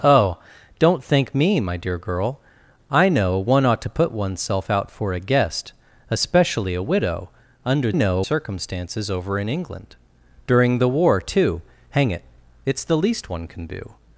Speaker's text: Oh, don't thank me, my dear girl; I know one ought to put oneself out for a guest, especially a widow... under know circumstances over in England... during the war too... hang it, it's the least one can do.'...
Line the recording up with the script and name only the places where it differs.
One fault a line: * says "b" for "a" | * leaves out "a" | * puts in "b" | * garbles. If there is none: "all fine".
all fine